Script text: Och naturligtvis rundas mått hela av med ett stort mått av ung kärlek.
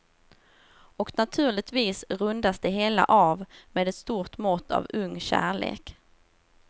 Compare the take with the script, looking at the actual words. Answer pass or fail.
fail